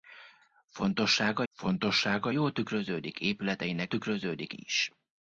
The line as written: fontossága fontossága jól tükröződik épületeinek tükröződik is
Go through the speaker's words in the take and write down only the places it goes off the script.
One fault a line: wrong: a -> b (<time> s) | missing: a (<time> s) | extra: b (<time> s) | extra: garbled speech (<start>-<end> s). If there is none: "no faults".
no faults